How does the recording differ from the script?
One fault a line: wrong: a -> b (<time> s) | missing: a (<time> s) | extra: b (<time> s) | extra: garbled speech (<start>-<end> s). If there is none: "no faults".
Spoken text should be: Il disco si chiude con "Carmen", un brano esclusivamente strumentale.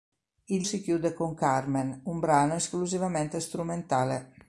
missing: disco (0.7 s)